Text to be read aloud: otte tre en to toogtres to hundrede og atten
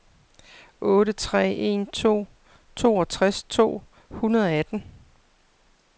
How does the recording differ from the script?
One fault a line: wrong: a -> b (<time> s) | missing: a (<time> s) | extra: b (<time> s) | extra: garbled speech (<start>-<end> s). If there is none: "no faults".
no faults